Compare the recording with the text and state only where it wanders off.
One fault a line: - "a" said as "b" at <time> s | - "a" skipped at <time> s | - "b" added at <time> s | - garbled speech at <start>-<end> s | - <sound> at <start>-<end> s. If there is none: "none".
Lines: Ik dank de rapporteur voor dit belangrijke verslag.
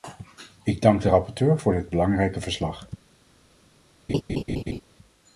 - laugh at 4.1-4.8 s